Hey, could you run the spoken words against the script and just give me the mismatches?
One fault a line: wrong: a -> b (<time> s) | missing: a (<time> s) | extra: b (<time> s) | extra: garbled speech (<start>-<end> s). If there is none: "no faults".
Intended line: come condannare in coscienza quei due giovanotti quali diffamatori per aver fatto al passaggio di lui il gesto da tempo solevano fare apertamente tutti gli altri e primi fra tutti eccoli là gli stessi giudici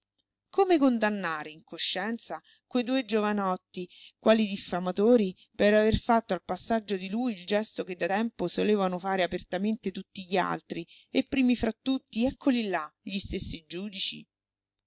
extra: che (7.8 s)